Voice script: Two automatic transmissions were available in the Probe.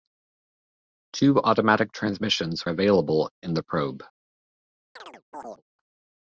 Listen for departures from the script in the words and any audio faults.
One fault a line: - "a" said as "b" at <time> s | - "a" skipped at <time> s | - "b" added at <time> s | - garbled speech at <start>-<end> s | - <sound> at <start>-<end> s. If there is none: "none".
- "were" skipped at 2.7 s
- chirp at 5.0-5.6 s